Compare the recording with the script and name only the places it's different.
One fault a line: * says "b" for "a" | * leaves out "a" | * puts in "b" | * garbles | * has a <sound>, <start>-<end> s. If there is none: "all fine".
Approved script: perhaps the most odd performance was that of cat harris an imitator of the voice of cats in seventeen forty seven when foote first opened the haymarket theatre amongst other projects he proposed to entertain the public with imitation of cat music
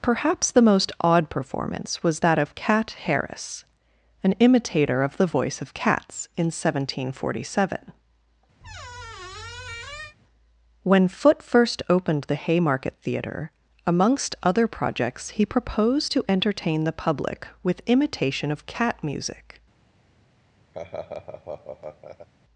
* has a squeak, 8.6-10.2 s
* has a laugh, 20.7-22.3 s